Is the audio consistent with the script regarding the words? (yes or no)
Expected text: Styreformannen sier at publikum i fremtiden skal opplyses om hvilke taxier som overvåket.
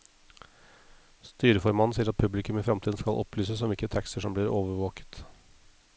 no